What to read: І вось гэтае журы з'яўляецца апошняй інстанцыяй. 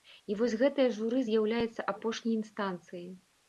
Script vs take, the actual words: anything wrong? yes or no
no